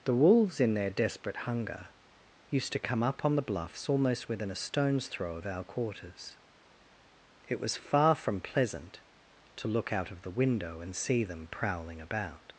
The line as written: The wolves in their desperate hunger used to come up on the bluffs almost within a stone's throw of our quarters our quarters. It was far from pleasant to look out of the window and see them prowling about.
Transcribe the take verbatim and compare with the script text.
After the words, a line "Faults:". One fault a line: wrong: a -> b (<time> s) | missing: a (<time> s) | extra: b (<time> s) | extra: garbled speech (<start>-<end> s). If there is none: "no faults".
The wolves in their desperate hunger used to come up on the bluffs almost within a stone's throw of our quarters. It was far from pleasant to look out of the window and see them prowling about.
Faults:
missing: our quarters (6.4 s)